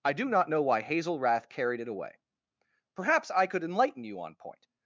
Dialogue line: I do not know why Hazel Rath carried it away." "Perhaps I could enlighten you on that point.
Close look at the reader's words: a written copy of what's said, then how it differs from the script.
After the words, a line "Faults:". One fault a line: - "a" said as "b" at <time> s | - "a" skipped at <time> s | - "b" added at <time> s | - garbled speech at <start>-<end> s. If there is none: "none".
I do not know why Hazel Rath carried it away." "Perhaps I could enlighten you on point.
Faults:
- "that" skipped at 4.3 s